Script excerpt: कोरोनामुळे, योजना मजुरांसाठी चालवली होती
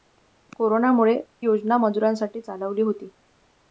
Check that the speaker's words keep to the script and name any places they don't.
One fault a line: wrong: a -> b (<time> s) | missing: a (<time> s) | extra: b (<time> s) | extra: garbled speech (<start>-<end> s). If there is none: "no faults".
no faults